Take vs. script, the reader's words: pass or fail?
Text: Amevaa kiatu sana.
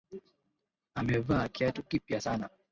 fail